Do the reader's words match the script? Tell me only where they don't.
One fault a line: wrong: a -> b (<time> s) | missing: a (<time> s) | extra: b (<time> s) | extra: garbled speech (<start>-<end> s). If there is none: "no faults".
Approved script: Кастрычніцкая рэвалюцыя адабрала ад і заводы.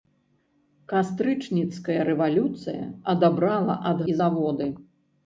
no faults